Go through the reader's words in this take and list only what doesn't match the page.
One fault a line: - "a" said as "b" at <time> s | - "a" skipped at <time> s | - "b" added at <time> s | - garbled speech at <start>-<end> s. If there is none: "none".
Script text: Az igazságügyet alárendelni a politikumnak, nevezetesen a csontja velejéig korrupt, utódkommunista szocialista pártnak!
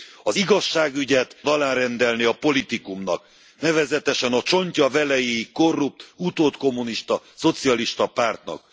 none